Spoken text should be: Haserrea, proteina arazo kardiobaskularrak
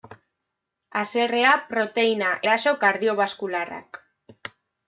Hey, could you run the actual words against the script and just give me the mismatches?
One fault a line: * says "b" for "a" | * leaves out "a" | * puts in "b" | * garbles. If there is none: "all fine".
all fine